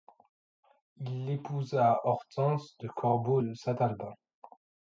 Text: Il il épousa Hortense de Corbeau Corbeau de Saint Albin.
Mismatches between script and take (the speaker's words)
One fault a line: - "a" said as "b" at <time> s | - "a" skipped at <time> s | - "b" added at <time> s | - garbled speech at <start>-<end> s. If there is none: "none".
- "il" skipped at 1.3 s
- "Corbeau" skipped at 3.4 s